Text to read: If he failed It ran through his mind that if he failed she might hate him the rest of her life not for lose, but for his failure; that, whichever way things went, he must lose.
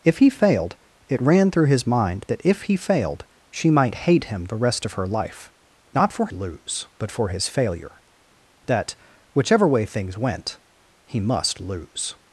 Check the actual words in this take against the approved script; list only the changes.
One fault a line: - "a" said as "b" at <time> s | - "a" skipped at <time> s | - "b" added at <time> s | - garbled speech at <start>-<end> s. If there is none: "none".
none